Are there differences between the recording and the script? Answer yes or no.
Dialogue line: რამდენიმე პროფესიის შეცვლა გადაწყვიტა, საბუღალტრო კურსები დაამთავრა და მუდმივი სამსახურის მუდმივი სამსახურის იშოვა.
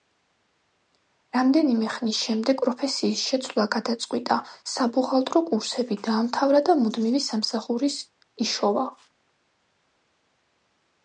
yes